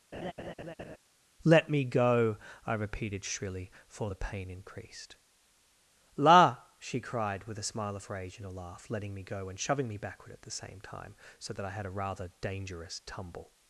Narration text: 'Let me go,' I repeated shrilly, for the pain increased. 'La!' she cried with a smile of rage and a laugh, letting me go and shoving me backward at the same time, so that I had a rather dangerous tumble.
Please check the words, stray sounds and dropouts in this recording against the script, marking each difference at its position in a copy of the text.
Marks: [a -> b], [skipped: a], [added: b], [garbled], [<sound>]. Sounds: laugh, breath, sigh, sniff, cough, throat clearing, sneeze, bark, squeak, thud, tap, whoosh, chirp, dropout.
[laugh] 'Let me go,' I repeated shrilly, for the pain increased. 'La!' she cried with a smile of rage and a laugh, letting me go and shoving me backward at the same time, so that I had a rather dangerous tumble.